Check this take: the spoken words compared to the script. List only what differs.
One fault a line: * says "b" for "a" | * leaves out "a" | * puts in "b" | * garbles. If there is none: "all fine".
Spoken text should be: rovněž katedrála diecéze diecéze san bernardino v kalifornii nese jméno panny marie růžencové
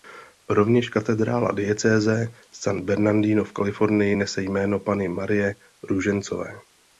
* leaves out "diecéze"